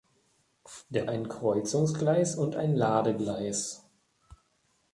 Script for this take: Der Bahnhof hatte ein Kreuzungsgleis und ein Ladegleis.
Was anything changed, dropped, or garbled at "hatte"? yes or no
yes